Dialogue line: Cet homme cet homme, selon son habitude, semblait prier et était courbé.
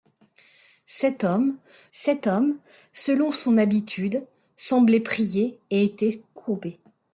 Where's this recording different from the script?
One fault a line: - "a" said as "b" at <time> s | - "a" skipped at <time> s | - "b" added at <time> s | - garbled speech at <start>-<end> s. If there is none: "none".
none